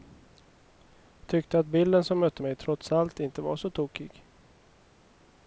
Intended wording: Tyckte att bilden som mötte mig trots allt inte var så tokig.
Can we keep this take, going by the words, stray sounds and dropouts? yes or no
yes